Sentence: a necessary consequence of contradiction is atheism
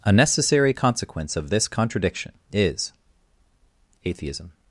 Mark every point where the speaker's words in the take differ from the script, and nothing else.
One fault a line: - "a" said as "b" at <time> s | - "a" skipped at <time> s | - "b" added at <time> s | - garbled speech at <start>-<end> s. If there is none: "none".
- "this" added at 1.5 s